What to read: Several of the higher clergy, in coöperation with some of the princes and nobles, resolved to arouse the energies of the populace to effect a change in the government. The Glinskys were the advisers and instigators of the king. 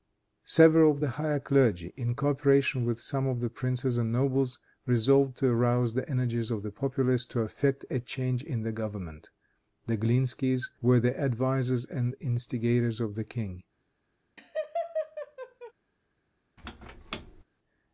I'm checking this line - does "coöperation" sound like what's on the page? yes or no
yes